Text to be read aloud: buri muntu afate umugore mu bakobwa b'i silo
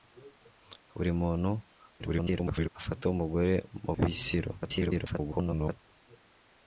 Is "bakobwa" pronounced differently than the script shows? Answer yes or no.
yes